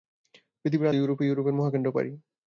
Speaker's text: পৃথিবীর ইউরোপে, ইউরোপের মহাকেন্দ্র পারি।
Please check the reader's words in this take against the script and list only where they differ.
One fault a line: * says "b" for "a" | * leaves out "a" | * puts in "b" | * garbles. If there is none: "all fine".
all fine